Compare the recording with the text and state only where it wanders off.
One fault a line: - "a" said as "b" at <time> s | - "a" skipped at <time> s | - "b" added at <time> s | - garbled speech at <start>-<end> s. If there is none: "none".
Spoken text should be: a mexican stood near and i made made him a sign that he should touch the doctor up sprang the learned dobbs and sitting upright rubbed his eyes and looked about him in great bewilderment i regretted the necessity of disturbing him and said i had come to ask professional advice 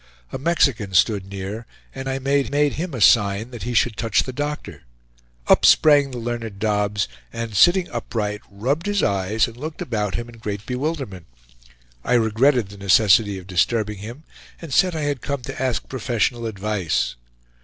none